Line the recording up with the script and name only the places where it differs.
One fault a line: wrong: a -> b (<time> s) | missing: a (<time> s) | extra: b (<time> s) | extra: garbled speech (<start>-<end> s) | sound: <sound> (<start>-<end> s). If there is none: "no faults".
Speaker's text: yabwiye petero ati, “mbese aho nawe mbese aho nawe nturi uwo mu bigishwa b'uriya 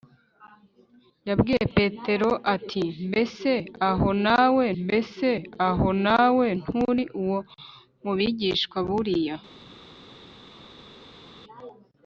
no faults